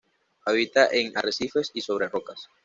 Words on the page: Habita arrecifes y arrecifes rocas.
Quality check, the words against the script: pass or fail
fail